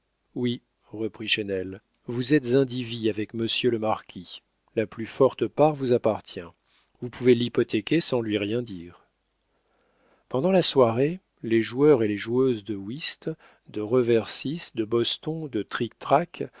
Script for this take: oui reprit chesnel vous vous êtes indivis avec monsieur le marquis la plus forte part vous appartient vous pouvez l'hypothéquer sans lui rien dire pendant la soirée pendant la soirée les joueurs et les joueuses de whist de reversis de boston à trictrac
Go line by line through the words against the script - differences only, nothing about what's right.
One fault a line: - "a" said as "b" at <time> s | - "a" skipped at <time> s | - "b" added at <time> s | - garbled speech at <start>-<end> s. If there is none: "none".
- "vous" skipped at 2.3 s
- "pendant la soirée" skipped at 11.2 s
- "à" said as "de" at 15.5 s